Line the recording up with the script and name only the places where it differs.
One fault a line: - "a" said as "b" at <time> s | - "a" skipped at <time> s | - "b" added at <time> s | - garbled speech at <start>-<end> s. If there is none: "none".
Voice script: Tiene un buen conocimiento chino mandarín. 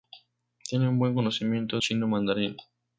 none